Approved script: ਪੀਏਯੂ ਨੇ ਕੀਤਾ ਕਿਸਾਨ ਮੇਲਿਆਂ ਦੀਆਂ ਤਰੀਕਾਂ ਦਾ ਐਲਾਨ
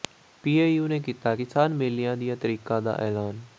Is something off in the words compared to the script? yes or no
no